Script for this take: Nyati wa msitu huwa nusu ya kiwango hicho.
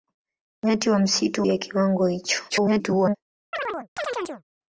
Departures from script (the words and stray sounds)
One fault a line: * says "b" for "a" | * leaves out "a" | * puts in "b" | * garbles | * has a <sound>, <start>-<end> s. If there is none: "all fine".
* leaves out "huwa nusu"
* garbles
* has a chirp, 3.5-4.4 s